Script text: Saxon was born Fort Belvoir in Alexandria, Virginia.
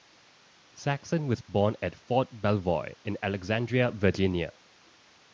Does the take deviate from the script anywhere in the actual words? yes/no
yes